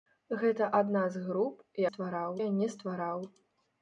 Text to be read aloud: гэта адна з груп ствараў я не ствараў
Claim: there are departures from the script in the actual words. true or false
false